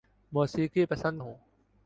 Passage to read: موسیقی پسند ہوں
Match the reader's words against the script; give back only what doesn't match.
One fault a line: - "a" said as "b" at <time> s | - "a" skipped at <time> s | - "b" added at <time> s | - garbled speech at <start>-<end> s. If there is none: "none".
none